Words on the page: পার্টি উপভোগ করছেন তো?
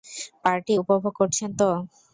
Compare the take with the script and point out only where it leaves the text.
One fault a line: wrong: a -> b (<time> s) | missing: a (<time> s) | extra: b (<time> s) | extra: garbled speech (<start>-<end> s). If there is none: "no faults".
no faults